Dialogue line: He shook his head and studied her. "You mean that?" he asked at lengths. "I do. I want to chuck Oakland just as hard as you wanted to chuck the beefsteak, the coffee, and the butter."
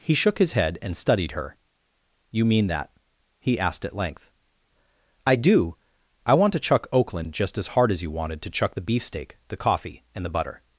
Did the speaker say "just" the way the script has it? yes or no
yes